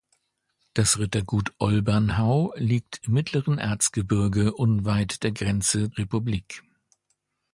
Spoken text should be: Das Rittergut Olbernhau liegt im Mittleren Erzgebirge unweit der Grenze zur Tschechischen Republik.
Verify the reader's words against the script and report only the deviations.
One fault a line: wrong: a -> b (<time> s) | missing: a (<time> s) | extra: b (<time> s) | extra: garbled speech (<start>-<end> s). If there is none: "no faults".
missing: im (3.0 s)
missing: zur Tschechischen (5.9 s)